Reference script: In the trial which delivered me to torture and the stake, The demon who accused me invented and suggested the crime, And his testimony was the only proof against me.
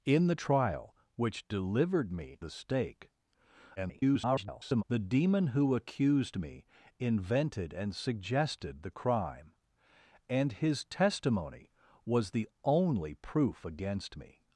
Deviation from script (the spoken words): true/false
true